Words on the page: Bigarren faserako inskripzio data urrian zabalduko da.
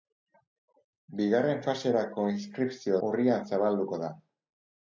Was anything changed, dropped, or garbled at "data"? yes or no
yes